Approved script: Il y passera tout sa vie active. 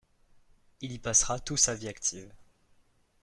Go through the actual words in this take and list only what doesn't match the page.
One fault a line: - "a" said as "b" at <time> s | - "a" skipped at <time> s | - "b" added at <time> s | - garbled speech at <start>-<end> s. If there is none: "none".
none